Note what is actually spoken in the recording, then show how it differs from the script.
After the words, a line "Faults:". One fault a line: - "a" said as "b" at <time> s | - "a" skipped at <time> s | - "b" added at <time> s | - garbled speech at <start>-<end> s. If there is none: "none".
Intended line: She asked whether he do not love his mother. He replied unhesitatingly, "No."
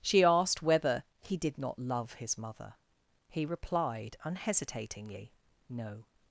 She asked whether he did not love his mother. He replied unhesitatingly, "No."
Faults:
- "do" said as "did" at 1.4 s